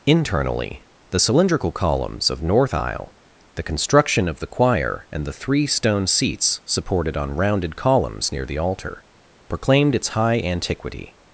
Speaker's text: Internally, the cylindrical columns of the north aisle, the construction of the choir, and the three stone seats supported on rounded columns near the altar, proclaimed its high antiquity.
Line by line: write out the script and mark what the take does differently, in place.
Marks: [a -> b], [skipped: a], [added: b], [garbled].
Internally, the cylindrical columns of [skipped: the] north aisle, the construction of the choir, and the three stone seats supported on rounded columns near the altar, proclaimed its high antiquity.